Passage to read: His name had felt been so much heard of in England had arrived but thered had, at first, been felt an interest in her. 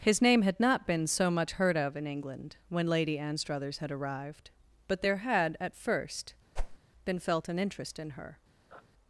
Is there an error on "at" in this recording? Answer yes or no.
no